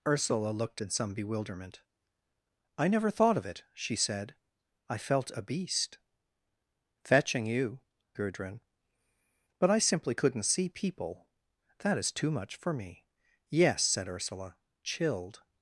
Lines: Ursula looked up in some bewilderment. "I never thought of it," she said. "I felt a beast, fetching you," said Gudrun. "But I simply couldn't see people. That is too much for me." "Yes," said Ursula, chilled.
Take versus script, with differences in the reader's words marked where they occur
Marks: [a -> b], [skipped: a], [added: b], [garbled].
Ursula looked [skipped: up] in some bewilderment. "I never thought of it," she said. "I felt a beast, fetching you," [skipped: said] Gudrun. "But I simply couldn't see people. That is too much for me." "Yes," said Ursula, chilled.